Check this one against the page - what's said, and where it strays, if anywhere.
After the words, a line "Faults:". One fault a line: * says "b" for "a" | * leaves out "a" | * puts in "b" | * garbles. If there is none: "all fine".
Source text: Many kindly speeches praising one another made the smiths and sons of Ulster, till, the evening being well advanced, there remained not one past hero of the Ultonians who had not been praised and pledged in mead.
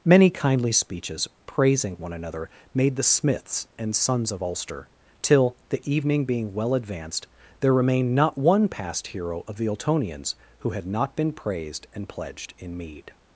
Many kindly speeches praising one another made the smiths and sons of Ulster, till, the evening being well advanced, there remained not one past hero of the Ultonians who had not been praised and pledged in mead.
Faults:
all fine